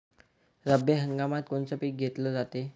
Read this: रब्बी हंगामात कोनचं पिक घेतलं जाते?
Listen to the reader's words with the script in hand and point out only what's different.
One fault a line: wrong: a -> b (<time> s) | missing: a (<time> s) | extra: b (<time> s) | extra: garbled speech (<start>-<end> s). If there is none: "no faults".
no faults